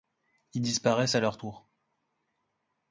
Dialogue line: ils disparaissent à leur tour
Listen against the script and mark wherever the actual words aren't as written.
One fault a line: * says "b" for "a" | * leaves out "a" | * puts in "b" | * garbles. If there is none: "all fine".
all fine